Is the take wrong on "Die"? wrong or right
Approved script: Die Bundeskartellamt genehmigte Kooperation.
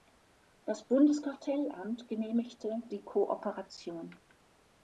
wrong